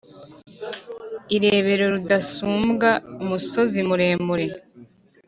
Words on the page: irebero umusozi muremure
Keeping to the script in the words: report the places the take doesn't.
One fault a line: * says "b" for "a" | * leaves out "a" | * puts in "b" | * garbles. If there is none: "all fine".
* puts in "rudasumbwa"